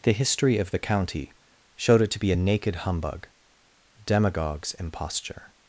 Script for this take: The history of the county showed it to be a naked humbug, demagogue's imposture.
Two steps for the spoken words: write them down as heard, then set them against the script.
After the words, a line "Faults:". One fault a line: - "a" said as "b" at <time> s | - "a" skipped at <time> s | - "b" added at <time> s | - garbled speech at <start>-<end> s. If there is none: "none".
The history of the county showed it to be a naked humbug, demagogue's imposture.
Faults:
none